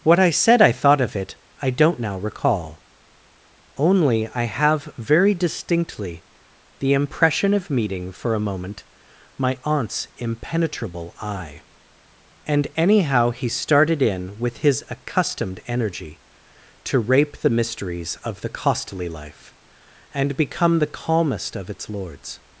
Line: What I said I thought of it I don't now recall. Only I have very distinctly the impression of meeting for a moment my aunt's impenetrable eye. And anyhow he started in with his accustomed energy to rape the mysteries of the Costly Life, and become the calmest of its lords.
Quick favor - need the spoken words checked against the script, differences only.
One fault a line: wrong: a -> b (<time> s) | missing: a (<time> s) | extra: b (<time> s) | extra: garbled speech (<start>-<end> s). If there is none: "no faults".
no faults